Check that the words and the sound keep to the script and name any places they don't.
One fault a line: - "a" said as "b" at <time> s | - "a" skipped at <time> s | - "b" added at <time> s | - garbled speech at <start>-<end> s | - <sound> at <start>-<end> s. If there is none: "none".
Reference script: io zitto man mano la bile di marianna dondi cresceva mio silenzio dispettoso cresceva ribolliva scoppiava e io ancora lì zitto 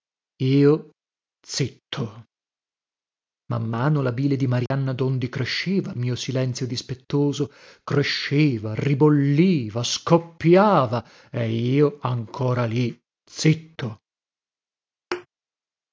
- dropout at 4.7-4.7 s
- thud at 15.1-15.3 s